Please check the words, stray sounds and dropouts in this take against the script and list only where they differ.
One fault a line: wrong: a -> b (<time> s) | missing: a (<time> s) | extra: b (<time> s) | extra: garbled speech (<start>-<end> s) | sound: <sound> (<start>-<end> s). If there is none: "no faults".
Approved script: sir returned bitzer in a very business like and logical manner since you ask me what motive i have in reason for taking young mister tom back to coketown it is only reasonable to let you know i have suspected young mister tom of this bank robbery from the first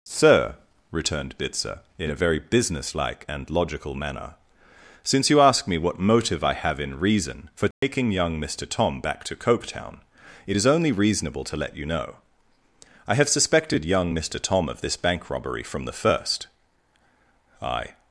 sound: dropout (7.7-7.8 s)
extra: i (17.6 s)